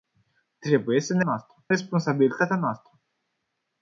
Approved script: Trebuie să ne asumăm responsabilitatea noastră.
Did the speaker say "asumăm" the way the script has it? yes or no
no